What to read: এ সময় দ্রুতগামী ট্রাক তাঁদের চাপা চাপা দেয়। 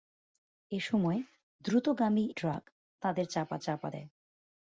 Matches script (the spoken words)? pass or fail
pass